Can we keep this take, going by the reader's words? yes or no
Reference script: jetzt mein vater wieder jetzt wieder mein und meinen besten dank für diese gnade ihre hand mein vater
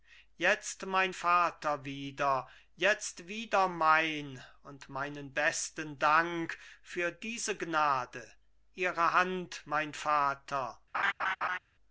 yes